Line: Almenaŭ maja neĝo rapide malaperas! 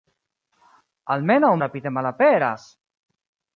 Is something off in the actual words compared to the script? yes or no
yes